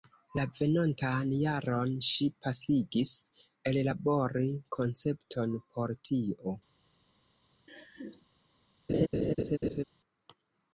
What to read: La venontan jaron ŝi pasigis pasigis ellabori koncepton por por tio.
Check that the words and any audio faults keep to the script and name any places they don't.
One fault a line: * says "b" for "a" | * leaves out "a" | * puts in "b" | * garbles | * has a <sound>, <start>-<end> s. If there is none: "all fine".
* leaves out "pasigis"
* leaves out "por"
* has a laugh, 7.7-8.3 s
* has a laugh, 8.9-9.8 s